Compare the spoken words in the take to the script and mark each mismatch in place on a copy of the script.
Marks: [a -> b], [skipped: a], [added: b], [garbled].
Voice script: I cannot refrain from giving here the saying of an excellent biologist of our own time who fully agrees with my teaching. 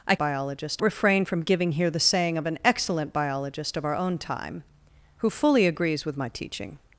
I [cannot -> biologist] refrain from giving here the saying of an excellent biologist of our own time who fully agrees with my teaching.